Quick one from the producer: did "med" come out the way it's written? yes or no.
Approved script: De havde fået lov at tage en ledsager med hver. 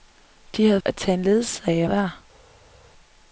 no